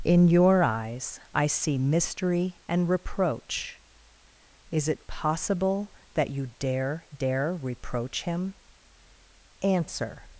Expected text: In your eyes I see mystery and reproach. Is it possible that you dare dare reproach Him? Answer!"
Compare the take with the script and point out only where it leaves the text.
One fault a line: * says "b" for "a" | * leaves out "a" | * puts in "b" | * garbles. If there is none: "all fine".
all fine